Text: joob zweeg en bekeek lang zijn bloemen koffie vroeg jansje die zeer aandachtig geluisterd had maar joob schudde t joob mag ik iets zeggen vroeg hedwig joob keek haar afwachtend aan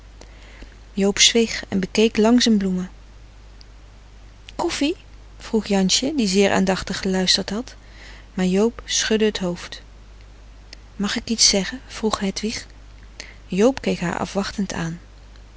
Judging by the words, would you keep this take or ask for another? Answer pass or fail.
fail